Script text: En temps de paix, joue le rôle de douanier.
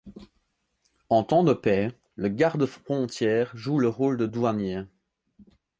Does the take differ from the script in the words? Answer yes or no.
yes